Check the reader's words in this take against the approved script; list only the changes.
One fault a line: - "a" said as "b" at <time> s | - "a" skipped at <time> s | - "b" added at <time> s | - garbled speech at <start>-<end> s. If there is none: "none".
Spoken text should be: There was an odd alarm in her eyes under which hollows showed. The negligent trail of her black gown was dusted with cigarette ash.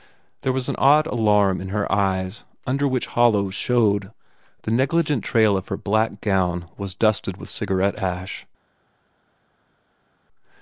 none